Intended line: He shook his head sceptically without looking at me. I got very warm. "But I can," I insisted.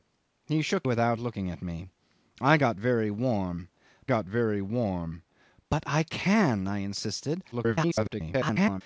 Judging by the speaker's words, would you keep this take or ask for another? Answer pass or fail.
fail